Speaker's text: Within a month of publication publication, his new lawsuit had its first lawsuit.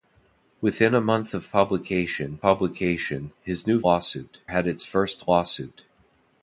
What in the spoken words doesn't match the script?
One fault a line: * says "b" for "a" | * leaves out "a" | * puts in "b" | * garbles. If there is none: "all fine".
all fine